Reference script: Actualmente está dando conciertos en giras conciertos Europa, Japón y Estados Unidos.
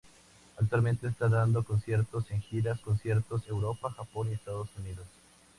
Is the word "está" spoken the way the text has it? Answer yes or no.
yes